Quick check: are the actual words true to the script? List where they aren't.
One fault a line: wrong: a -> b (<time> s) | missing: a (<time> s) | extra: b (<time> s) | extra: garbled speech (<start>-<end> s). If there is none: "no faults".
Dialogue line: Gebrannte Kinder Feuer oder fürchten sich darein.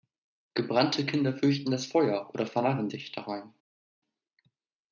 extra: fürchten das (1.4 s)
wrong: fürchten -> vernarren (2.5 s)